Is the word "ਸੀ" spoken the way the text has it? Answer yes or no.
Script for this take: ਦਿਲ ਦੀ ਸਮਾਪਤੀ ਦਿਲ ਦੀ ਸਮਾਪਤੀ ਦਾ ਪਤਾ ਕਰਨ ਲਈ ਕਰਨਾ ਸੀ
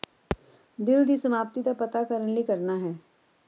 no